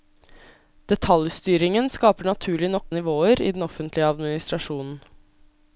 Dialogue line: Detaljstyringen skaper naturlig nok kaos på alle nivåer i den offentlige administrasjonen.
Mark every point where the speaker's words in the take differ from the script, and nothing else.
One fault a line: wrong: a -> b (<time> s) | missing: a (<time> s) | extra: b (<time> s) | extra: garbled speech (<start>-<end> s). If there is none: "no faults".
missing: kaos på alle (2.9 s)